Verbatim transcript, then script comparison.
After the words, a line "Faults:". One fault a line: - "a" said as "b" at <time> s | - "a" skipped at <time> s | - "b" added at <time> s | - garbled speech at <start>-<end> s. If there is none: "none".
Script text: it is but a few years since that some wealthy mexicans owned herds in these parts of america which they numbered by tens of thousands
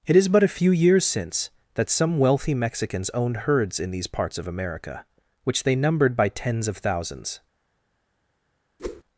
it is but a few years since that some wealthy mexicans owned herds in these parts of america which they numbered by tens of thousands
Faults:
none